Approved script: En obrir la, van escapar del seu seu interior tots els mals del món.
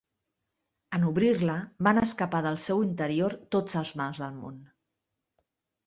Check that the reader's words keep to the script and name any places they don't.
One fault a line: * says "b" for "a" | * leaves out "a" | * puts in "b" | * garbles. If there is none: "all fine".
* leaves out "seu"